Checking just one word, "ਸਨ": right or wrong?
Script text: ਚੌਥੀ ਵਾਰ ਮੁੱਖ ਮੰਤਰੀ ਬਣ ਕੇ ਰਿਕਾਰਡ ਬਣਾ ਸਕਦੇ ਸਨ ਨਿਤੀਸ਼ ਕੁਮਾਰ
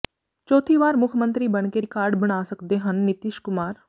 wrong